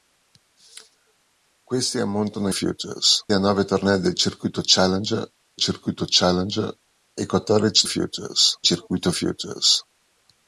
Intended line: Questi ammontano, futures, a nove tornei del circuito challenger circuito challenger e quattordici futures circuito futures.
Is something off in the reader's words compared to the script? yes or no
no